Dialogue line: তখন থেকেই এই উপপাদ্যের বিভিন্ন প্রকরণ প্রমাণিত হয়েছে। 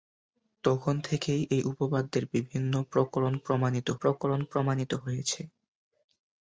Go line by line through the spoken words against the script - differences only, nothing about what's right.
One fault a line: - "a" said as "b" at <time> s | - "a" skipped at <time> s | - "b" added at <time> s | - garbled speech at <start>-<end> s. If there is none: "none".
- "প্রকরণ প্রমাণিত" added at 4.0 s